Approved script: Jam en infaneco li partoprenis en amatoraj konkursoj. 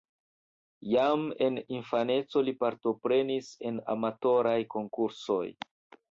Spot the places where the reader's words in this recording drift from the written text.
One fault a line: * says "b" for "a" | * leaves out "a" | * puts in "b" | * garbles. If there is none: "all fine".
all fine